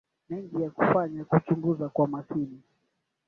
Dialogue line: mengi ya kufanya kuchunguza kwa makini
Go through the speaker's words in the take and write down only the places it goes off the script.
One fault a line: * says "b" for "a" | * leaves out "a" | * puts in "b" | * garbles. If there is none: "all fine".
all fine